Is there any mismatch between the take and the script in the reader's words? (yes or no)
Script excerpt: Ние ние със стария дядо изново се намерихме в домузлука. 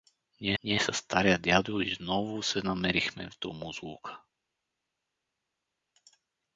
no